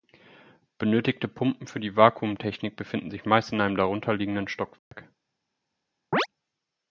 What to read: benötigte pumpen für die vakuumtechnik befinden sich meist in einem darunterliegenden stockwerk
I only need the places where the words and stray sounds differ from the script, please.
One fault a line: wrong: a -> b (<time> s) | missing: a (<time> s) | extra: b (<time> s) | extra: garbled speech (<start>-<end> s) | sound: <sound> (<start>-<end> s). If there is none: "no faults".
sound: dropout (4.8-4.9 s)
sound: chirp (6.1-6.3 s)